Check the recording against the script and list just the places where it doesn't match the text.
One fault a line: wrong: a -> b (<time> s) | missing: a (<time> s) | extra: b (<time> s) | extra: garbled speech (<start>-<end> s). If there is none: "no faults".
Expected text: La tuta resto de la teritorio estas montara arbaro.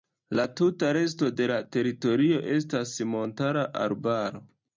no faults